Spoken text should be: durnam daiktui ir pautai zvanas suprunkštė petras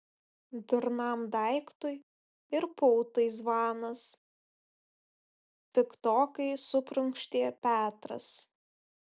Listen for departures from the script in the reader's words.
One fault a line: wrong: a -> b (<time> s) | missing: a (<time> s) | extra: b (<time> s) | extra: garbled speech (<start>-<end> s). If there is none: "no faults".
extra: piktokai (5.8 s)